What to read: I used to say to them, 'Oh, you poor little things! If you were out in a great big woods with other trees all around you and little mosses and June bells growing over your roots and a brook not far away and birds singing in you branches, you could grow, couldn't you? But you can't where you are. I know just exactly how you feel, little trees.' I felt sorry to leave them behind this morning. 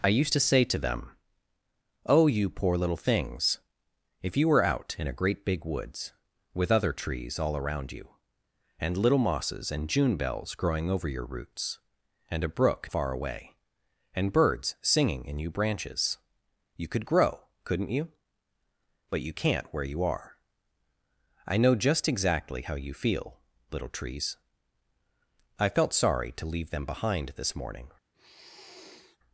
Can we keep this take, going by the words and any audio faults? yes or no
no